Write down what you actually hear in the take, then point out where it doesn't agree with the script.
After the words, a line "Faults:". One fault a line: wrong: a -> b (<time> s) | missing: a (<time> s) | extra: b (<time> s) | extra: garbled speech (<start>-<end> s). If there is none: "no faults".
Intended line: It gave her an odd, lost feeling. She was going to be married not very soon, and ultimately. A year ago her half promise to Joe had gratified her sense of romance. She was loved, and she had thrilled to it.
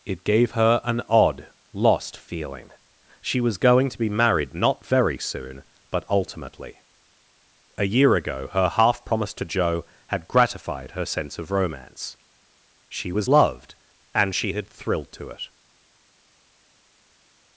It gave her an odd, lost feeling. She was going to be married not very soon, but ultimately. A year ago her half promise to Joe had gratified her sense of romance. She was loved, and she had thrilled to it.
Faults:
wrong: and -> but (5.9 s)